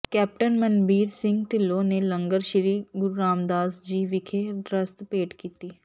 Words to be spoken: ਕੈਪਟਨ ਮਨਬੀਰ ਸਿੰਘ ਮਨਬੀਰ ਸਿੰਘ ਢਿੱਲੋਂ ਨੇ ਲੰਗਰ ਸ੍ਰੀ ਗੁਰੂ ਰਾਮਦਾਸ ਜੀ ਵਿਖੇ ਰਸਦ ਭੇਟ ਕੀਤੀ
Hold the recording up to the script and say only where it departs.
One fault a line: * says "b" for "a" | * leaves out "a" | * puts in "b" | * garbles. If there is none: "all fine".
* leaves out "ਮਨਬੀਰ ਸਿੰਘ"